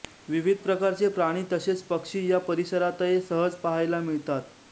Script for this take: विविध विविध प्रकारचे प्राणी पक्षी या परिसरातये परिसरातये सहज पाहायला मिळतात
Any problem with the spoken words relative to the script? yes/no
yes